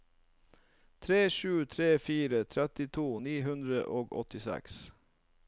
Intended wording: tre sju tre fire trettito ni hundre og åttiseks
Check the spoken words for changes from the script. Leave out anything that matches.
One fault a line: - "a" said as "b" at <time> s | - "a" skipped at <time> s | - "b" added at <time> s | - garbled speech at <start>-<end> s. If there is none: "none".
none